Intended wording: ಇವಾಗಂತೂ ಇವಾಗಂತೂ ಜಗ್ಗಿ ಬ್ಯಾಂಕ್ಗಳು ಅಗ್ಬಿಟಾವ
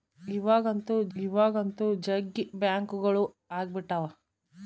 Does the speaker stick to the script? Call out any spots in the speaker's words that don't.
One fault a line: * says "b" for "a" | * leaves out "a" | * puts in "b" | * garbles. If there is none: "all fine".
all fine